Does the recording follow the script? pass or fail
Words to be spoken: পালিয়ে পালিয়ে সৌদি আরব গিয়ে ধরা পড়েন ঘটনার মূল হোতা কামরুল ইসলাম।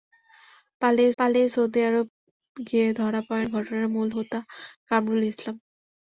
pass